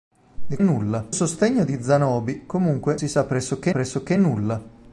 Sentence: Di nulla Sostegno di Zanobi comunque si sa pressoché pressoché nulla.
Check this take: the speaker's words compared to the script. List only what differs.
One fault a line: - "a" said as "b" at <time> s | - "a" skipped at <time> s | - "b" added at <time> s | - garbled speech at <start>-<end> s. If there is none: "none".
none